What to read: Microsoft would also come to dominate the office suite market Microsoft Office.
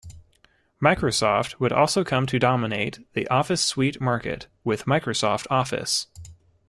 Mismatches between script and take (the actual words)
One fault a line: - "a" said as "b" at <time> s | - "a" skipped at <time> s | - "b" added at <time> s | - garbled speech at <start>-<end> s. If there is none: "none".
- "with" added at 4.6 s